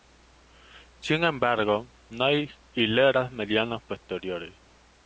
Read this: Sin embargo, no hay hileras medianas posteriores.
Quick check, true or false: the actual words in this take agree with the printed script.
true